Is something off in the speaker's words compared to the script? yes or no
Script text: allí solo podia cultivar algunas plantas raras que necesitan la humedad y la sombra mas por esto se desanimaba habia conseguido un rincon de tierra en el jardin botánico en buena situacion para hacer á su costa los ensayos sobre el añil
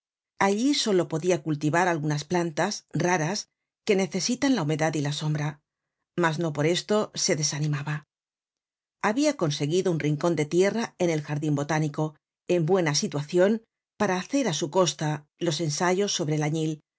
yes